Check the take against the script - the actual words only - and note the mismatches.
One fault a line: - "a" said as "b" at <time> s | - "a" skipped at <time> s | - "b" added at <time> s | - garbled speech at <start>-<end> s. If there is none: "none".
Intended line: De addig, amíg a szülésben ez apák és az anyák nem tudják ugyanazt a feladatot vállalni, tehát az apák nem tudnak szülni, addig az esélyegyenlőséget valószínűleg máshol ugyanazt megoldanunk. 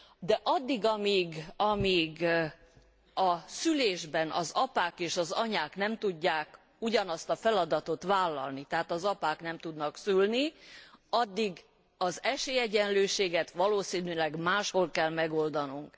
- "ez" said as "az" at 4.3 s
- "ugyanazt" said as "kell" at 14.9 s